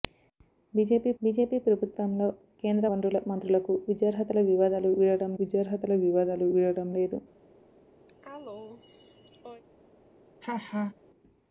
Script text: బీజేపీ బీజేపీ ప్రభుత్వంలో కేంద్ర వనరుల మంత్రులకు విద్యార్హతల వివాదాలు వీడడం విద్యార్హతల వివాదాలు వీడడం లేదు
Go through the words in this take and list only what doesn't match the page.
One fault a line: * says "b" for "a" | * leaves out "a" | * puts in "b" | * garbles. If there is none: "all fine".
all fine